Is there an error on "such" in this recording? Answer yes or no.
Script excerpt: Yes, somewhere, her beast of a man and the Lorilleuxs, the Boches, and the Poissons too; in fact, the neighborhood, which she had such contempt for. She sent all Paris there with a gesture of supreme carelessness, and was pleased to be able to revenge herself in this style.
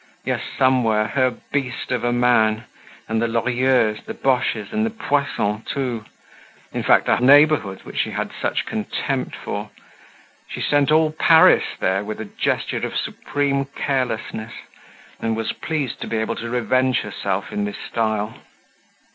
no